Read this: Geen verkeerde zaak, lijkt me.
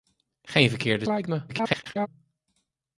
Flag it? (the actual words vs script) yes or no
yes